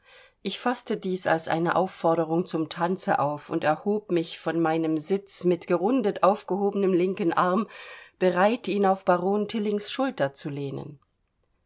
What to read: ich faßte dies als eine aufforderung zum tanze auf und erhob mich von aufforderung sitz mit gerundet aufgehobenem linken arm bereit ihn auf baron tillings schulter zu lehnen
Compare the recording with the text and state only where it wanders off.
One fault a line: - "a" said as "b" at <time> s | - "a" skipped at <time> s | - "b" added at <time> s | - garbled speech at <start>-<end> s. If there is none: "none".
- "aufforderung" said as "meinem" at 4.6 s